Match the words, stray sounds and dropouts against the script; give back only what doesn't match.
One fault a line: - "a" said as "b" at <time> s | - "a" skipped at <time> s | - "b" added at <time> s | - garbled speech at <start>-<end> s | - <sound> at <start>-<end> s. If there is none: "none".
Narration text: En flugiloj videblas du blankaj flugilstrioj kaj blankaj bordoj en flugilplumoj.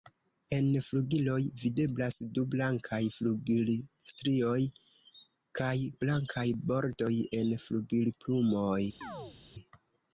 - chirp at 9.0-9.4 s